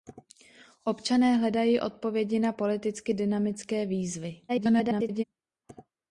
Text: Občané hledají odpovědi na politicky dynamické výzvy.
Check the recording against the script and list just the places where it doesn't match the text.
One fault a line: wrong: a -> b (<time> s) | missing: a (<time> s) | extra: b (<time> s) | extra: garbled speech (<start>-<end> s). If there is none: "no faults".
extra: garbled speech (4.5-5.2 s)